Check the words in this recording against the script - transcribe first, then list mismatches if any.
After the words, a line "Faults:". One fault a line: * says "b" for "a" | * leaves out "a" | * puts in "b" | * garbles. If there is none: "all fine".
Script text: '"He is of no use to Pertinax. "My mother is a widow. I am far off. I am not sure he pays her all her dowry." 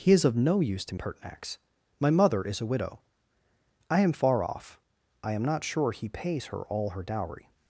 '"He is of no use to Pertinax. "My mother is a widow. I am far off. I am not sure he pays her all her dowry."
Faults:
all fine